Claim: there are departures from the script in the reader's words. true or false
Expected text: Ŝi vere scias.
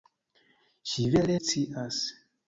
false